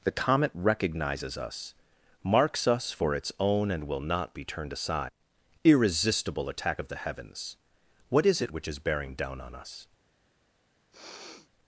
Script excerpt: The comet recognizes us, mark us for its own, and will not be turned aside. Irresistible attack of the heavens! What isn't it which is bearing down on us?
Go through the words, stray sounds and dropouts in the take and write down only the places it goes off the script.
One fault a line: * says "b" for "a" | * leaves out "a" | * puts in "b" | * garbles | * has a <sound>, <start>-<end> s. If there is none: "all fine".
* says "marks" for "mark"
* says "is" for "isn't"
* has a sniff, 10.9-11.5 s